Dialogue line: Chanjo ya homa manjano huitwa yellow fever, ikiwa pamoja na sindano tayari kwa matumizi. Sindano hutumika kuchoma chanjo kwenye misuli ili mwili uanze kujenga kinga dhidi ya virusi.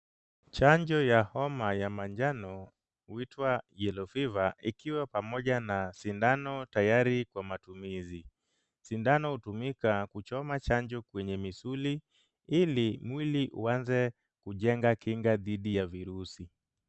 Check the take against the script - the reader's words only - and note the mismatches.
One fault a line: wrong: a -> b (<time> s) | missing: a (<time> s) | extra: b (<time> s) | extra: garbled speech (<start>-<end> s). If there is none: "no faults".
extra: ya (1.7 s)